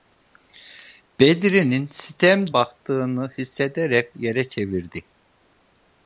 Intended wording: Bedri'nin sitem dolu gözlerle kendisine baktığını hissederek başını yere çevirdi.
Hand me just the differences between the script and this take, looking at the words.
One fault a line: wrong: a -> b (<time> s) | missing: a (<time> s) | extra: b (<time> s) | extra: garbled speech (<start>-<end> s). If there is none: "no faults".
missing: dolu gözlerle kendisine (2.5 s)
missing: başını (4.2 s)